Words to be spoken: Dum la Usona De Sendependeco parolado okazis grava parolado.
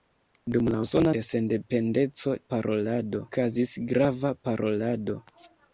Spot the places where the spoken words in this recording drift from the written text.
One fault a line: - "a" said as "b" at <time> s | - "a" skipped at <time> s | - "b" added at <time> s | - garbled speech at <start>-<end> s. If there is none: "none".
none